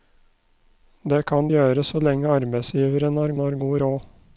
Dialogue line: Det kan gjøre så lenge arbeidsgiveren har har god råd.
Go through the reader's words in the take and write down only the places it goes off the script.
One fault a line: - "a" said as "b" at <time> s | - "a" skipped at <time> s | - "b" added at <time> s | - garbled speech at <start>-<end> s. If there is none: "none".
none